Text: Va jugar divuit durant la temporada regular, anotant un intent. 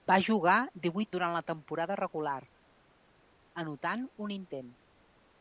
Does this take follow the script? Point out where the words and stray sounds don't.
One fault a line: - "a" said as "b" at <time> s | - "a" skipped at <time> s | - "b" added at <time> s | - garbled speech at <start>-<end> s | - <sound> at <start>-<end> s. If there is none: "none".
none